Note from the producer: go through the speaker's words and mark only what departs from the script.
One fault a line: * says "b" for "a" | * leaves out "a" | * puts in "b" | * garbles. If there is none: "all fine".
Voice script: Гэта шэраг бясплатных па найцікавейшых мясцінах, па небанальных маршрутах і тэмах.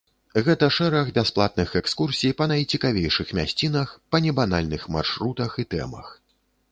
* puts in "экскурсій"